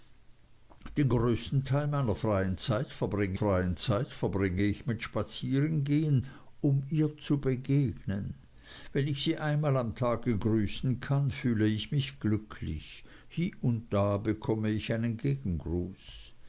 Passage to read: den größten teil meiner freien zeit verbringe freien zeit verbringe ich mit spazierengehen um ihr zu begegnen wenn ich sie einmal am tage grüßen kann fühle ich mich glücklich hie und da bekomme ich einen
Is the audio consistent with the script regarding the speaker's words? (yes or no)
yes